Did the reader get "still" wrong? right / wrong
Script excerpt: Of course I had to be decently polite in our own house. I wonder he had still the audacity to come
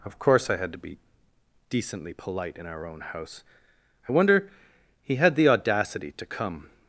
wrong